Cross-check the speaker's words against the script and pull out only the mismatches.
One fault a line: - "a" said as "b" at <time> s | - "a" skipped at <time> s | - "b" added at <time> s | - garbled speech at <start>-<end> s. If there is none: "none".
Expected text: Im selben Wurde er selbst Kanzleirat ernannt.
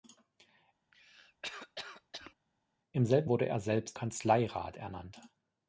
none